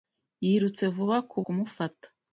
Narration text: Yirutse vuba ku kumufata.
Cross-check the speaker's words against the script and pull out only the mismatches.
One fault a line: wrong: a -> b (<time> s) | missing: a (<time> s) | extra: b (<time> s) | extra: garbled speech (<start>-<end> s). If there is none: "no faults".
no faults